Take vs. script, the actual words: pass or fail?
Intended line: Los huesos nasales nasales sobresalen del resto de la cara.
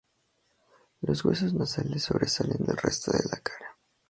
fail